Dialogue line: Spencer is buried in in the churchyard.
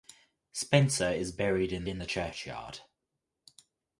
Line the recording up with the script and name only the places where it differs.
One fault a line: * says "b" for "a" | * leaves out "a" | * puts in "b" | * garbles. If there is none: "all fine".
all fine